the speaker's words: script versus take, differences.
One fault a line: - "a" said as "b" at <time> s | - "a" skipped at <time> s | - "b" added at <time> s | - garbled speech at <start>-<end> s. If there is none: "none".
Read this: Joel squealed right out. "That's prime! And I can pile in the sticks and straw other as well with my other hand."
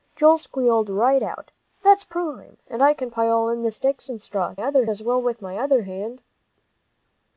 none